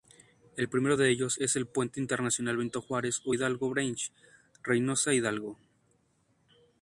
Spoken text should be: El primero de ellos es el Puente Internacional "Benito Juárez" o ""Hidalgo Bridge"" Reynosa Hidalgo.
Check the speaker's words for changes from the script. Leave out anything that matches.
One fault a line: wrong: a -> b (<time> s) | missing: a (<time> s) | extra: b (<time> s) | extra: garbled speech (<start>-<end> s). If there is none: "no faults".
no faults